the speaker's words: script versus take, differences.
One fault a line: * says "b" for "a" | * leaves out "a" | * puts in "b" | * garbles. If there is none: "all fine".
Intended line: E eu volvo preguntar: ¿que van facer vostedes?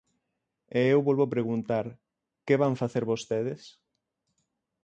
all fine